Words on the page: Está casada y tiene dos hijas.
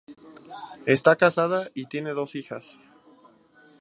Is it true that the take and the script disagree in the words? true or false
false